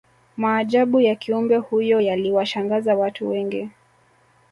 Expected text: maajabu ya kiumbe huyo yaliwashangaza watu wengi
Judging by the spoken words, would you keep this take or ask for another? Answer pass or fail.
pass